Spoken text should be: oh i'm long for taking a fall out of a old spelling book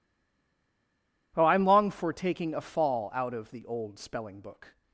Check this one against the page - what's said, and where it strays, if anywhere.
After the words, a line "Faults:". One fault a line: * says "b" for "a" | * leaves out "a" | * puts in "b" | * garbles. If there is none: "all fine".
oh i'm long for taking a fall out of the old spelling book
Faults:
* says "the" for "a"